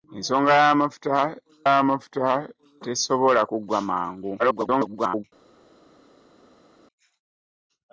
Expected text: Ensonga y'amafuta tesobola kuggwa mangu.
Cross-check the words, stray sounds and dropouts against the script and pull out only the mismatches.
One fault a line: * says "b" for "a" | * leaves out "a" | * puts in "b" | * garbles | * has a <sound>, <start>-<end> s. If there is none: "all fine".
* puts in "y'amafuta"
* garbles